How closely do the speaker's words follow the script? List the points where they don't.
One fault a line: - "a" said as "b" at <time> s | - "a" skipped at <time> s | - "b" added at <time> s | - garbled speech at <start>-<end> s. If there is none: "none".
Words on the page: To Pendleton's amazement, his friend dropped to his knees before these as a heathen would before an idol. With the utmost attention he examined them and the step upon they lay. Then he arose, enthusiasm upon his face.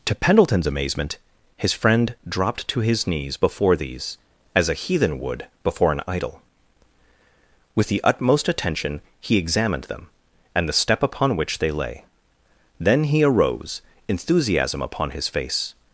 - "which" added at 11.4 s